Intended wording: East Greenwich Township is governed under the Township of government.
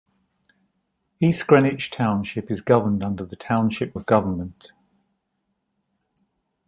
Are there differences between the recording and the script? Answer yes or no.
no